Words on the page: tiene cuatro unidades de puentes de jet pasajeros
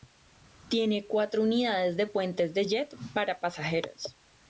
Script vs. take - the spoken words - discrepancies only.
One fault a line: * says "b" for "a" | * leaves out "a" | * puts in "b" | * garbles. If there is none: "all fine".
* puts in "para"